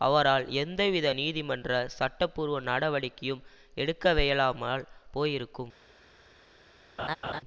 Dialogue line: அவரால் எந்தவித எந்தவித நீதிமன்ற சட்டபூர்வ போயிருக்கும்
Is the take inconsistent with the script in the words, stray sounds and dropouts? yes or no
yes